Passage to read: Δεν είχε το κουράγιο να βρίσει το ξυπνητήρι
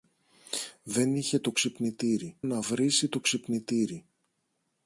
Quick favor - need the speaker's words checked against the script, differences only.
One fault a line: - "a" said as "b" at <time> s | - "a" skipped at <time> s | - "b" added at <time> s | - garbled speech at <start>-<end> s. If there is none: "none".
- "κουράγιο" said as "ξυπνητήρι" at 1.5 s